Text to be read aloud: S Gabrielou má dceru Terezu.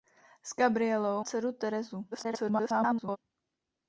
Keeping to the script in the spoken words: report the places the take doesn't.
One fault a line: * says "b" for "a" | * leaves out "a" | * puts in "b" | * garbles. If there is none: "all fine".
* leaves out "má"
* garbles